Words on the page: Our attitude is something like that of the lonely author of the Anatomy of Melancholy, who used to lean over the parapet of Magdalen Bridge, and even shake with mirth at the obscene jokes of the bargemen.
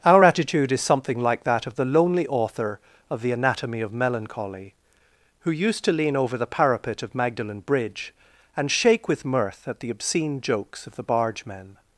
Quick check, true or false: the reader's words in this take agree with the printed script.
false